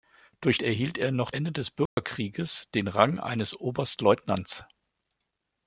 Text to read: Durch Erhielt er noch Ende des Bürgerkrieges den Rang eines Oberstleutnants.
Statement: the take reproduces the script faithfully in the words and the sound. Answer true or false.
false